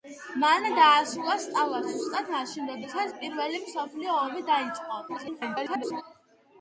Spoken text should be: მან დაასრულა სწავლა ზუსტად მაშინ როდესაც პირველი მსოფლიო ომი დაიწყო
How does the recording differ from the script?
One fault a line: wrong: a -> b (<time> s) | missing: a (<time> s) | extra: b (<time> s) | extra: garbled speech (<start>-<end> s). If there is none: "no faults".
extra: garbled speech (5.1-6.0 s)